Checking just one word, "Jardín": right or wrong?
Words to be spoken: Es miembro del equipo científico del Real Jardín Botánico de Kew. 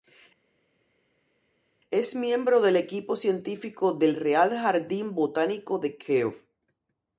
right